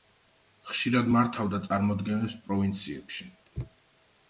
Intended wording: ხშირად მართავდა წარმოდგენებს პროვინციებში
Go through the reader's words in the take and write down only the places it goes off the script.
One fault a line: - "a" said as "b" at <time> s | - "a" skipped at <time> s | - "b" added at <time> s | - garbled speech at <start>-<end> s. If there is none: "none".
none